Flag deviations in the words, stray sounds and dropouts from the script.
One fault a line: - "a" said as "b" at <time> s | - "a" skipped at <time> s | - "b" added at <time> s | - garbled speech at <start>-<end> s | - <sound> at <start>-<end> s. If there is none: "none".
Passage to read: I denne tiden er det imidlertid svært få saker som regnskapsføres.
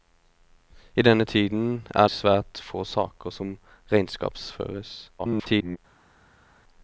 - "det imidlertid" skipped at 2.1 s
- garbled speech at 5.2-5.8 s